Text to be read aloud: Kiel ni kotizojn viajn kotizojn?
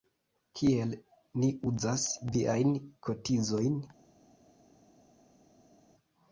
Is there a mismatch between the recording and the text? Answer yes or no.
yes